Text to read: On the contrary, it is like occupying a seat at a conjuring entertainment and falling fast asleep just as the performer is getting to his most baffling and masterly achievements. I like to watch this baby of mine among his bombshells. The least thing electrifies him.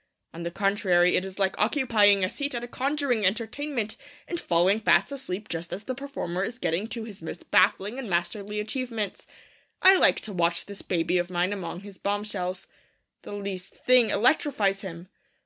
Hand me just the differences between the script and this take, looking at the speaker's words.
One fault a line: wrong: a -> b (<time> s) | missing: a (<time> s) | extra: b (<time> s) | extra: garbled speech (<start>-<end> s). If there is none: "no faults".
no faults